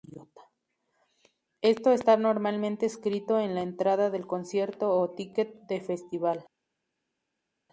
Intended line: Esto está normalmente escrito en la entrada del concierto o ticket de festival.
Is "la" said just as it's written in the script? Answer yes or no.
yes